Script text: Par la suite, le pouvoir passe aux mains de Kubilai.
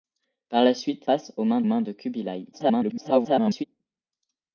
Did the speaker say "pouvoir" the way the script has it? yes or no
no